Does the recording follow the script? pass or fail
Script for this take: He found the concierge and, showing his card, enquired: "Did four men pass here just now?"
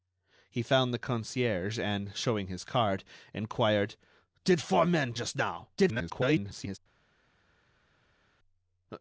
fail